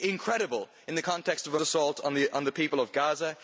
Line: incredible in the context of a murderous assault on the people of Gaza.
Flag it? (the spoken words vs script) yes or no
yes